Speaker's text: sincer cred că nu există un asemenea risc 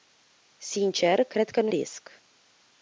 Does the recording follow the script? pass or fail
fail